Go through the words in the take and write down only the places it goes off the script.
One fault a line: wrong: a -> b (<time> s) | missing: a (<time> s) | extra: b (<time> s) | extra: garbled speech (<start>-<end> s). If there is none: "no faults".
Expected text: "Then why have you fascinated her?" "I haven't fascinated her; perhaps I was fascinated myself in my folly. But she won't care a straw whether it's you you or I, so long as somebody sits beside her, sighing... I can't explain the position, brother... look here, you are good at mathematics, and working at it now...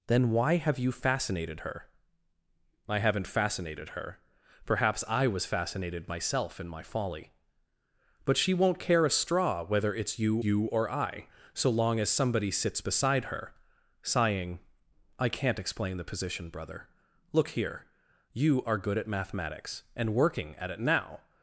no faults